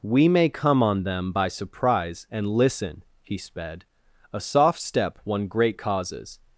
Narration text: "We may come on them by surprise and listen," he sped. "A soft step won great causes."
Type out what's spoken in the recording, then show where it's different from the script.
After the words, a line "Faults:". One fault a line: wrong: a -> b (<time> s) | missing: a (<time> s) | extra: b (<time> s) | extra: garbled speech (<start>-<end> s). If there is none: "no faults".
"We may come on them by surprise and listen," he sped. "A soft step won great causes."
Faults:
no faults